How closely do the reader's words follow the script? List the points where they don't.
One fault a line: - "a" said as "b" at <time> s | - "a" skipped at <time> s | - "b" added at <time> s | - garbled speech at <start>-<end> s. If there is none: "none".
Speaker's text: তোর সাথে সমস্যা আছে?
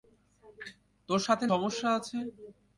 none